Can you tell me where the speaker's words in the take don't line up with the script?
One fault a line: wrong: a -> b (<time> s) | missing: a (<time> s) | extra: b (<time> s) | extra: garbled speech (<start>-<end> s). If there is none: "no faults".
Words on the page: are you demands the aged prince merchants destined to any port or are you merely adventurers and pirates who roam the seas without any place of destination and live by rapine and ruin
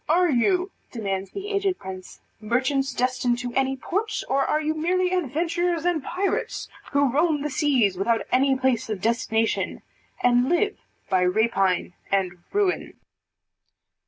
no faults